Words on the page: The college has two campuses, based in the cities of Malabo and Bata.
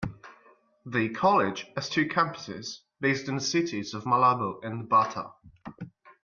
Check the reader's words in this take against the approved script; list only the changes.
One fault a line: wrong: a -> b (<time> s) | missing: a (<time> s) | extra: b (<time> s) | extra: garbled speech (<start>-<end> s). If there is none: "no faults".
no faults